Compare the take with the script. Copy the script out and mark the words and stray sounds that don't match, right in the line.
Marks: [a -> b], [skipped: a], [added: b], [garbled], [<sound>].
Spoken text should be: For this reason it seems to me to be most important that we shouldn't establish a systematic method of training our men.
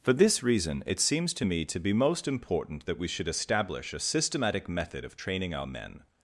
For this reason it seems to me to be most important that we [shouldn't -> should] establish a systematic method of training our men.